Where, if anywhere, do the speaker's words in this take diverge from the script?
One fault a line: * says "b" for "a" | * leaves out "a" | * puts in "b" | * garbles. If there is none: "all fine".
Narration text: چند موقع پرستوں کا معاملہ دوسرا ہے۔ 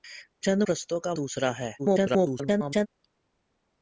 * leaves out "موقع"
* leaves out "معاملہ"
* garbles